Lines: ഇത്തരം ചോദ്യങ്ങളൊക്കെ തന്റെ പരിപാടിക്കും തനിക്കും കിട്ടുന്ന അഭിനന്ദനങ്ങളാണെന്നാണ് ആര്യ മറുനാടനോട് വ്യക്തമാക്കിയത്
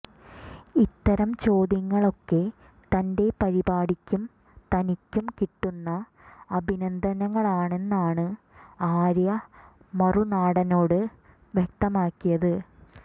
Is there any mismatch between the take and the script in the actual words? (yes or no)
no